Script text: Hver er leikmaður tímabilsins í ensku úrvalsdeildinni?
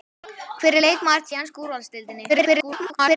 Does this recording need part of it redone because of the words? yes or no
yes